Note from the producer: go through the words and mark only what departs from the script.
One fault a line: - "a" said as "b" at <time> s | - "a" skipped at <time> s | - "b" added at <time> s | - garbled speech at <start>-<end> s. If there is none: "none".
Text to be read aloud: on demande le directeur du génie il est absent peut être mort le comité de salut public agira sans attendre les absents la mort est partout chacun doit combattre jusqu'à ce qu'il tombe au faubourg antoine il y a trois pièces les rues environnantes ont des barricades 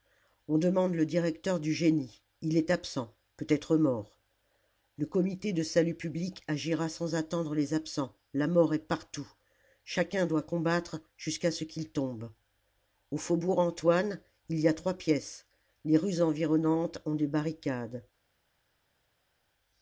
none